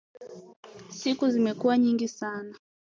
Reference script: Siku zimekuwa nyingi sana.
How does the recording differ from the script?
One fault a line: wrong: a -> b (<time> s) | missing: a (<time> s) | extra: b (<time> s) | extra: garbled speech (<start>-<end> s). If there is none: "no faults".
no faults